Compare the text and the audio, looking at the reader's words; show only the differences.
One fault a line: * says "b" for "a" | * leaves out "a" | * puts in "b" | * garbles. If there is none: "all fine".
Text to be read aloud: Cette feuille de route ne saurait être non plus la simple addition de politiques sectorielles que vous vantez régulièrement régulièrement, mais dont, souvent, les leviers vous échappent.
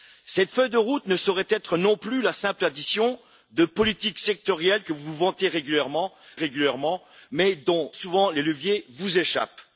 all fine